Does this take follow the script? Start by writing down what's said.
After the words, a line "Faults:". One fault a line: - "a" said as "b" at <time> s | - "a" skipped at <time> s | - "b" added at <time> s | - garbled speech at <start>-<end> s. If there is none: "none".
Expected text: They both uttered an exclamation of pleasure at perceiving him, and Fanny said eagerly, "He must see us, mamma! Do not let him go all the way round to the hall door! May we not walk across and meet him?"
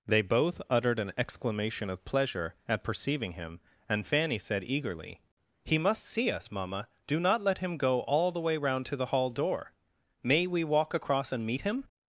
They both uttered an exclamation of pleasure at perceiving him, and Fanny said eagerly, "He must see us, mamma! Do not let him go all the way round to the hall door! May we walk across and meet him?"
Faults:
- "not" skipped at 10.6 s